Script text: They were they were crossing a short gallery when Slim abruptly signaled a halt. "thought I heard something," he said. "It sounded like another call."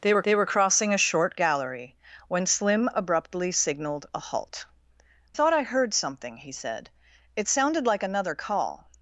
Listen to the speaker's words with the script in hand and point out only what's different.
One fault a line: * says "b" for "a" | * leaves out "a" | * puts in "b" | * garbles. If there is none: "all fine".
all fine